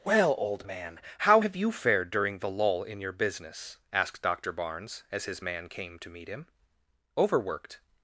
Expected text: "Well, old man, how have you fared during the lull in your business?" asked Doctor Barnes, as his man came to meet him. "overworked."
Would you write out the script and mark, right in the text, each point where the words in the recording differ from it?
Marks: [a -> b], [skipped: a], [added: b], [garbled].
"Well, old man, how have you fared during the lull in your business?" asked Doctor Barnes, as his man came to meet him. "overworked."